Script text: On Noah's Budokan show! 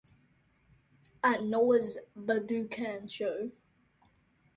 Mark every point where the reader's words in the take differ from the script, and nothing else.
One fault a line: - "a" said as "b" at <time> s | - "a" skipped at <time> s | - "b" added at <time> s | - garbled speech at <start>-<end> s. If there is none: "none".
- "On" said as "At" at 1.2 s